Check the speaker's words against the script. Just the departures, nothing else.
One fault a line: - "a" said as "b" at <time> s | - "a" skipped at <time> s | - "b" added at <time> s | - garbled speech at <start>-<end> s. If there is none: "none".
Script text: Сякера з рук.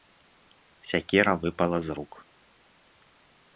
- "выпала" added at 1.4 s